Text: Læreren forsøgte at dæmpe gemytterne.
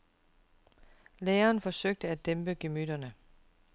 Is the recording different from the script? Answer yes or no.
no